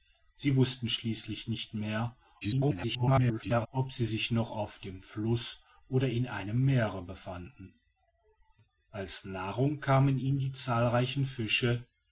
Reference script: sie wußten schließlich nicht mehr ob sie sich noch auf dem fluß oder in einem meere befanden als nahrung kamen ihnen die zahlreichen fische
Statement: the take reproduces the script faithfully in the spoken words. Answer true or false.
false